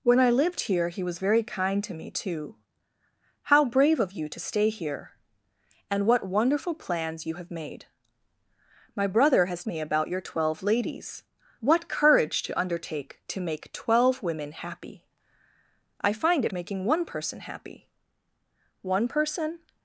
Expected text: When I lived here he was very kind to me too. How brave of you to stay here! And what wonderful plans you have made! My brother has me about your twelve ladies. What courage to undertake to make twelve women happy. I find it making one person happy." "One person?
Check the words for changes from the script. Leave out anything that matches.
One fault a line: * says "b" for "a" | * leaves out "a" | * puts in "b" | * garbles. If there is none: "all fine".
all fine